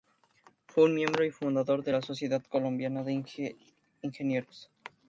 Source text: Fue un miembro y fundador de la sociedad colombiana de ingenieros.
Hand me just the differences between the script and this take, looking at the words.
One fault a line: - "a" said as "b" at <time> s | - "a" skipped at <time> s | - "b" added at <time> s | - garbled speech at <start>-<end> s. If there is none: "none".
none